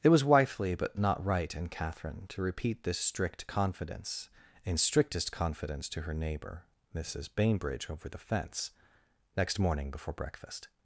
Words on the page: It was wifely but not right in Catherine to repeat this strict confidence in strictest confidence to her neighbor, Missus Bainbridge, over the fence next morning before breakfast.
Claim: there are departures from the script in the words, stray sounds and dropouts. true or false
false